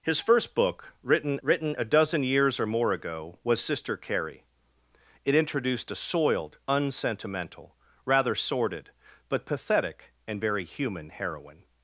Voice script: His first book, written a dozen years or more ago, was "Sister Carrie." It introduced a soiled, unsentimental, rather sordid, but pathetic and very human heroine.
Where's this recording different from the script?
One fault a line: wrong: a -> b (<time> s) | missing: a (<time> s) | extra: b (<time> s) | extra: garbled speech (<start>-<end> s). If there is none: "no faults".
extra: written (1.4 s)